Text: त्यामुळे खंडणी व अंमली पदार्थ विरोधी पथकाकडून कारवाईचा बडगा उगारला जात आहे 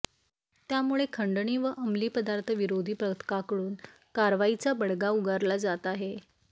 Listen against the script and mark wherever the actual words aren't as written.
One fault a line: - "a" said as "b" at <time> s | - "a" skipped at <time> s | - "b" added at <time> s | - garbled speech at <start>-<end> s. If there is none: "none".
none